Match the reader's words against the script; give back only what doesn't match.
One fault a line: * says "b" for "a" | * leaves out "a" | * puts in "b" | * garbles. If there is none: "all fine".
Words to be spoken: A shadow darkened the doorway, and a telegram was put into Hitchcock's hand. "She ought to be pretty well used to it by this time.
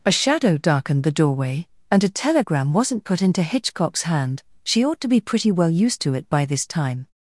* says "wasn't" for "was"